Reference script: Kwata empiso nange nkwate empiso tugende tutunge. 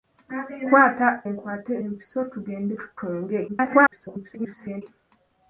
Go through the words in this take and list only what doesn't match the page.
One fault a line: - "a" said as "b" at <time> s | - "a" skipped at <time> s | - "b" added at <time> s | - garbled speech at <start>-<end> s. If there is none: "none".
- "empiso nange" skipped at 1.1 s
- garbled speech at 3.5-4.8 s